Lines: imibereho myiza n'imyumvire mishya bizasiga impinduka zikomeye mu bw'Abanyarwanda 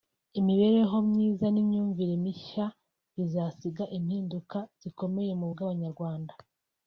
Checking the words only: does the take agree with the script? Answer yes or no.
yes